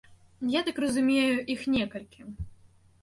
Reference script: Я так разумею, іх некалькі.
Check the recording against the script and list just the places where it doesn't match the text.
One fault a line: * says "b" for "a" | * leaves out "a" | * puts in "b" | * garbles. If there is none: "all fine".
all fine